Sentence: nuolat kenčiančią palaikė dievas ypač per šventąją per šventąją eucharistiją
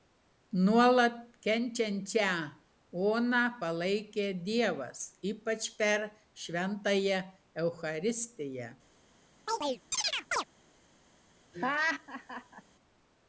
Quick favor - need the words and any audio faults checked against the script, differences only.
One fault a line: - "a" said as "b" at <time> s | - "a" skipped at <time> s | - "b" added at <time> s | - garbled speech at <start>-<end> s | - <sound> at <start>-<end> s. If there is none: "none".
- "oną" added at 3.1 s
- "per šventąją" skipped at 7.2 s
- chirp at 9.5-10.5 s
- laugh at 11.5-12.6 s